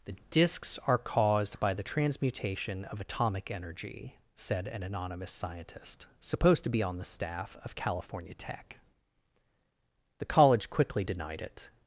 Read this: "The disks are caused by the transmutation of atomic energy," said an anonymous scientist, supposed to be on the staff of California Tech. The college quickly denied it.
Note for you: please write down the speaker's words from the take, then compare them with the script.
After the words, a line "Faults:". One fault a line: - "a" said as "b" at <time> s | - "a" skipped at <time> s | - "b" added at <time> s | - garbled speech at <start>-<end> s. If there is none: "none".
"The disks are caused by the transmutation of atomic energy," said an anonymous scientist, supposed to be on the staff of California Tech. The college quickly denied it.
Faults:
none